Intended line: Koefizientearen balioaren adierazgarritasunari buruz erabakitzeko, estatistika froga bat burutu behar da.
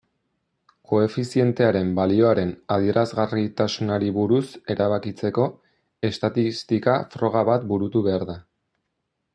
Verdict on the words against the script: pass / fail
pass